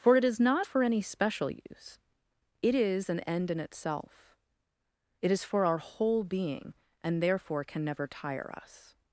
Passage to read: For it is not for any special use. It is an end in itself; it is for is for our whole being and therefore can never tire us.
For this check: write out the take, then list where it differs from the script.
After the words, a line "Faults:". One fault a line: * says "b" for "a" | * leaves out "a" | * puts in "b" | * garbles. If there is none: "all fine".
For it is not for any special use. It is an end in itself; it is for our whole being and therefore can never tire us.
Faults:
* leaves out "is for"